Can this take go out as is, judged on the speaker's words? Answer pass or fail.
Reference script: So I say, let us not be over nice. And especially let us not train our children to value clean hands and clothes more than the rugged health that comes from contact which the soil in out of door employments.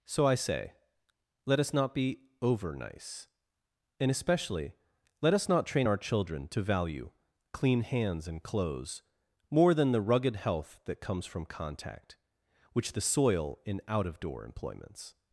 pass